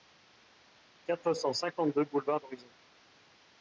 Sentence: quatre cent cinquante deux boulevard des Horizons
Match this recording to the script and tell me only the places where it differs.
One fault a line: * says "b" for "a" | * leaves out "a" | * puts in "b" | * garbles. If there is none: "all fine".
* leaves out "des"